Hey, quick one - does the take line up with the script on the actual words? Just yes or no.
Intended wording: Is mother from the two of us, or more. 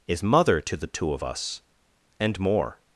no